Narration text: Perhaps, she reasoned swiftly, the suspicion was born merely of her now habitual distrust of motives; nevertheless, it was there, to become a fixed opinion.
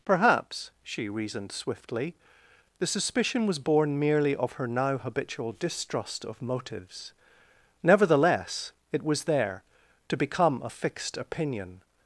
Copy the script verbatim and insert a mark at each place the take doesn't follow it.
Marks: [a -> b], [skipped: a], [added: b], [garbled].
Perhaps, she reasoned swiftly, the suspicion was born merely of her now habitual distrust of motives; nevertheless, it was there, to become a fixed opinion.